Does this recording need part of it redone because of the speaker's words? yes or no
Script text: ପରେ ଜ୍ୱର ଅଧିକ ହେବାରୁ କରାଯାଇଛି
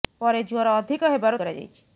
no